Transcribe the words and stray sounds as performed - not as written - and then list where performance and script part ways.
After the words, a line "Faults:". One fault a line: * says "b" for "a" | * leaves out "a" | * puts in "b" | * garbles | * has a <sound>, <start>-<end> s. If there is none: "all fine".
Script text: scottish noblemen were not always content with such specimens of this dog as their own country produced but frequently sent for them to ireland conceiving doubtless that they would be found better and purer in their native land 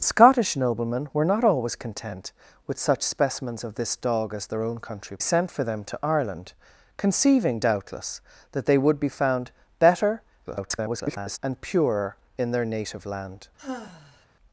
scottish noblemen were not always content with such specimens of this dog as their own country sent for them to ireland conceiving doubtless that they would be found better [garbled] and purer in their native land
Faults:
* leaves out "produced but frequently"
* garbles
* has a sigh, 13.6-14.3 s